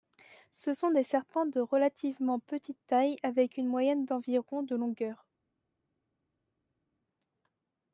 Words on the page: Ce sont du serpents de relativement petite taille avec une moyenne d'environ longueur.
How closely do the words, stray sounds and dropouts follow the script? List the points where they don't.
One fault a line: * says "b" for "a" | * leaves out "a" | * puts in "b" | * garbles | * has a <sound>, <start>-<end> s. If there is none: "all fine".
* says "des" for "du"
* puts in "de"